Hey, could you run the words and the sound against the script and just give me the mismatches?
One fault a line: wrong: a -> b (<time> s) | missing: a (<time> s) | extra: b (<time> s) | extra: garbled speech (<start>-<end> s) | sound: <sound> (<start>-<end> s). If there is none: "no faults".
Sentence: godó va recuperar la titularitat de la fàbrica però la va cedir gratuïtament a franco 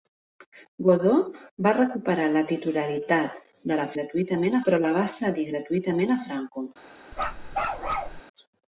wrong: fàbrica -> gratuïtament (4.0 s)
sound: bark (7.1-8.2 s)